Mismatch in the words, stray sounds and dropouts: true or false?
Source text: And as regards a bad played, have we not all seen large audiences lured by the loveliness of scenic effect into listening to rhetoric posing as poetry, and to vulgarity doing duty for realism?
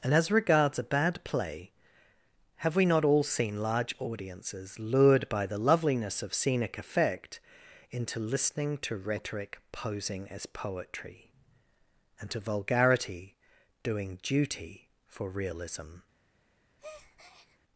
true